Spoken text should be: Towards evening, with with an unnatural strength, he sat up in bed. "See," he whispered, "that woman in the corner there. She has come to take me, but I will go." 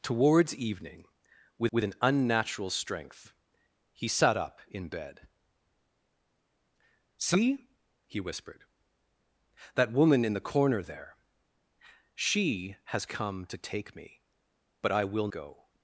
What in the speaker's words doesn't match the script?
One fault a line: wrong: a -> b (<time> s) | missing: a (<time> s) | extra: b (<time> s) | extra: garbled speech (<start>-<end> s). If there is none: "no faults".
no faults